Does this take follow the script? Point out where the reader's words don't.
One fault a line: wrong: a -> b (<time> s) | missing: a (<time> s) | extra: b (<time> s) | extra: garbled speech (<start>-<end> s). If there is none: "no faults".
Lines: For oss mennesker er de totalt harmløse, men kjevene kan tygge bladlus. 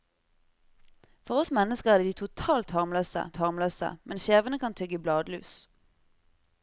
extra: harmløse (3.4 s)